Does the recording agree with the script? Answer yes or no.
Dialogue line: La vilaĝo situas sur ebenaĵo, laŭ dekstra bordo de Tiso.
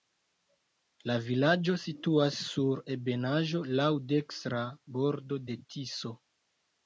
yes